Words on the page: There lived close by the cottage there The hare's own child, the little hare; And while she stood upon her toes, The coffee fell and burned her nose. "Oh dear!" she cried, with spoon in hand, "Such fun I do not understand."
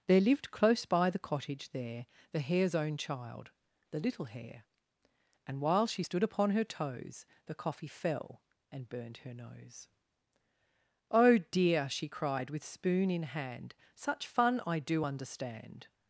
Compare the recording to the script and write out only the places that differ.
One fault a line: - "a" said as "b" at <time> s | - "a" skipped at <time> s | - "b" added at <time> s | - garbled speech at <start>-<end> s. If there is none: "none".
- "not" skipped at 15.0 s